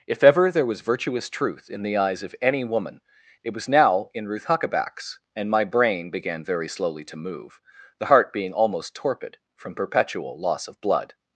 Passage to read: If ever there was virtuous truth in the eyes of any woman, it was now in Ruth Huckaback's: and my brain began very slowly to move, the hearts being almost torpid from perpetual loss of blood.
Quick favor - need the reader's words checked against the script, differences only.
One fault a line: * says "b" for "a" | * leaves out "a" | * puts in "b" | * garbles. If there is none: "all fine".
* says "heart" for "hearts"